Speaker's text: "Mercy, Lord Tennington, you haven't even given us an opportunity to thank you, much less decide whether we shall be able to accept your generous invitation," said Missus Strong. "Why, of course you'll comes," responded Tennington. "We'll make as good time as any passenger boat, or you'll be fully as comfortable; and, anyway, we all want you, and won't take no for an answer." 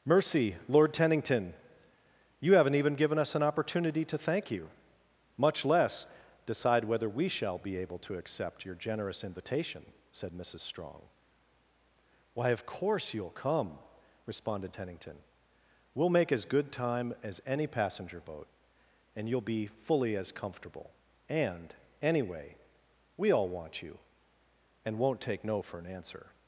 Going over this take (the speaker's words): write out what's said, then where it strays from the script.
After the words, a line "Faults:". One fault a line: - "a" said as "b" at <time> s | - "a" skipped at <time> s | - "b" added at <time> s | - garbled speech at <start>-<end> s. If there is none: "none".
"Mercy, Lord Tennington, you haven't even given us an opportunity to thank you, much less decide whether we shall be able to accept your generous invitation," said Missus Strong. "Why, of course you'll come," responded Tennington. "We'll make as good time as any passenger boat, and you'll be fully as comfortable; and, anyway, we all want you, and won't take no for an answer."
Faults:
- "comes" said as "come" at 13.3 s
- "or" said as "and" at 19.2 s